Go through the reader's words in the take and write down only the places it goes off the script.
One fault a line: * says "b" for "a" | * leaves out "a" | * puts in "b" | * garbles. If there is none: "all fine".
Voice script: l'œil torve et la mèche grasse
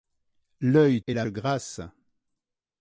* leaves out "torve"
* leaves out "mèche"